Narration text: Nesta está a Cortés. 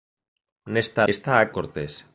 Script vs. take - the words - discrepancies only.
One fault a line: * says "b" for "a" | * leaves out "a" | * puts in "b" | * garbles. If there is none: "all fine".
all fine